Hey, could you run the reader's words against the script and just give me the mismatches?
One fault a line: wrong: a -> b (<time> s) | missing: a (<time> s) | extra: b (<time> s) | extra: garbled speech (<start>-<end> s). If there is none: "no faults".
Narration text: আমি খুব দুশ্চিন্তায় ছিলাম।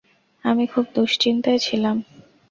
no faults